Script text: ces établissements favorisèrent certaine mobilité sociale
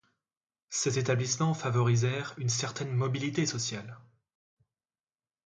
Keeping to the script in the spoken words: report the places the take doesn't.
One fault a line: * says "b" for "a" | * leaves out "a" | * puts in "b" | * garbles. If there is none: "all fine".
* puts in "une"